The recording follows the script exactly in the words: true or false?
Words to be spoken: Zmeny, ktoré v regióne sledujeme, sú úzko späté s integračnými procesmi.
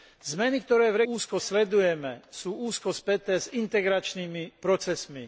false